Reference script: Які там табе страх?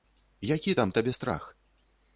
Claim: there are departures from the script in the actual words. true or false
false